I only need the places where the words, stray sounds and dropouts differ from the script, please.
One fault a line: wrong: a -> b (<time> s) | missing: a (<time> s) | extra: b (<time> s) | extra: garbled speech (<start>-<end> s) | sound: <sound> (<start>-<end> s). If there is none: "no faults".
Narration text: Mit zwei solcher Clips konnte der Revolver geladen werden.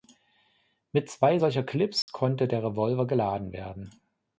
sound: dropout (2.0-2.1 s)